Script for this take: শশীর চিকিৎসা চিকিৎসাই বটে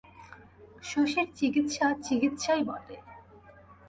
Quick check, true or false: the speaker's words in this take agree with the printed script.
true